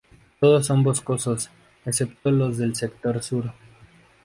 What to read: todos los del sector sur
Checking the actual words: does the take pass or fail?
fail